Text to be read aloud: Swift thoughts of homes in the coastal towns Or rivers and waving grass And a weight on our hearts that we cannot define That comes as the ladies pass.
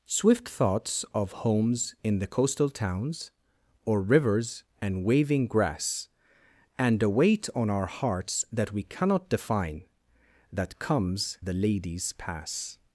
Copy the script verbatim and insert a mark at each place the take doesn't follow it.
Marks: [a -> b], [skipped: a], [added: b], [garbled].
Swift thoughts of homes in the coastal towns Or rivers and waving grass And a weight on our hearts that we cannot define That comes [skipped: as] the ladies pass.